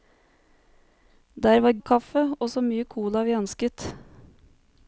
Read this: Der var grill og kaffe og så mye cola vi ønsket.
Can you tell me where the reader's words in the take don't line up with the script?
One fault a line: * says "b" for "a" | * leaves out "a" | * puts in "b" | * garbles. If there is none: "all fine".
* leaves out "grill"